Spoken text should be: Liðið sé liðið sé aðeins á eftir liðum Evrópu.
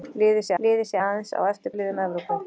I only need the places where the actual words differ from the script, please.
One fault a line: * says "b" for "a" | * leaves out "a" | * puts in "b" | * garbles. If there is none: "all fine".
all fine